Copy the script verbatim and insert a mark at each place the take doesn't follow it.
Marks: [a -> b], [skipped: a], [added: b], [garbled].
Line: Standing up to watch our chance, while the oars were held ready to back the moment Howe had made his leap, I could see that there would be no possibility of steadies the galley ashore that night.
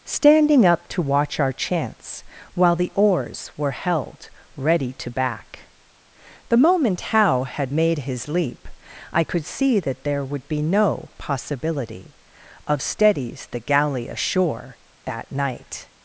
Standing up to watch our chance, while the oars were held ready to back the moment Howe had made his leap, I could see that there would be no possibility of steadies the galley ashore that night.